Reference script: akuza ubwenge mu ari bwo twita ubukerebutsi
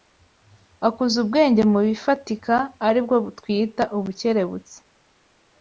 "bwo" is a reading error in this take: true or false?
false